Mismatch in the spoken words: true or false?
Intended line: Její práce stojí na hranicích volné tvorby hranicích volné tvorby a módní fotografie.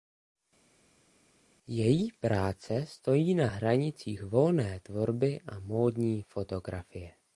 true